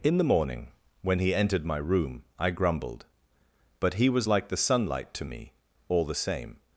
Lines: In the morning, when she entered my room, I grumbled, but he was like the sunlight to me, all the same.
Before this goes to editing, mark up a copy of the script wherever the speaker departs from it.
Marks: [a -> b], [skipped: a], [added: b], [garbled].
In the morning, when [she -> he] entered my room, I grumbled, but he was like the sunlight to me, all the same.